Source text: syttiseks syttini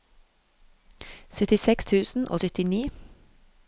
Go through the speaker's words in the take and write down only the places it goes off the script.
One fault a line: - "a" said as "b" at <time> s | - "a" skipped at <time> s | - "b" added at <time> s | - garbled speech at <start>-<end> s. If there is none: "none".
- "tusen og" added at 1.8 s